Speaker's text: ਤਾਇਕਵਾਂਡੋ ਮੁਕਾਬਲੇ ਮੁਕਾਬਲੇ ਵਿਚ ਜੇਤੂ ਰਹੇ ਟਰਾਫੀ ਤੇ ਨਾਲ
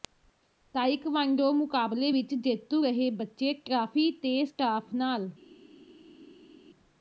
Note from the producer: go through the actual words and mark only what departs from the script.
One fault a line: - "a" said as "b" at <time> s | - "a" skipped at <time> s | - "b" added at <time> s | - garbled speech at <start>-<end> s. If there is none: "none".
- "ਮੁਕਾਬਲੇ" skipped at 2.1 s
- "ਬੱਚੇ" added at 3.1 s
- "ਸਟਾਫ" added at 4.4 s